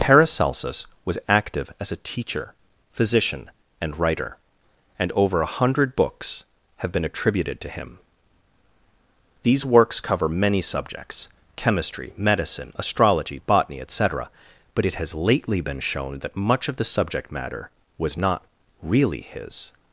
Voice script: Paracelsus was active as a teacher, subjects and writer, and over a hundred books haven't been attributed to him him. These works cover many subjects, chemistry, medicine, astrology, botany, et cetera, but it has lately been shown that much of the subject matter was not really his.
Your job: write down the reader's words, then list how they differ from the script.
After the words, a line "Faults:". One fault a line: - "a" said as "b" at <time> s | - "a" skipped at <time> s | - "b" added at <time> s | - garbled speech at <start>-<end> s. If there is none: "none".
Paracelsus was active as a teacher, physician and writer, and over a hundred books have been attributed to him. These works cover many subjects, chemistry, medicine, astrology, botany, et cetera, but it has lately been shown that much of the subject matter was not really his.
Faults:
- "subjects" said as "physician" at 2.9 s
- "haven't" said as "have" at 6.8 s
- "him" skipped at 8.0 s